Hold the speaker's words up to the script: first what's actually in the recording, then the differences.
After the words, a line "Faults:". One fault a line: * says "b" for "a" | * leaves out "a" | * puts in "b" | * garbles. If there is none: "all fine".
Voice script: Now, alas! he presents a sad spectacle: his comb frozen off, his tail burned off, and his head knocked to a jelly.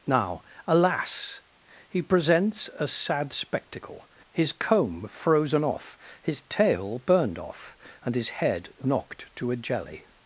Now, alas! he presents a sad spectacle: his comb frozen off, his tail burned off, and his head knocked to a jelly.
Faults:
all fine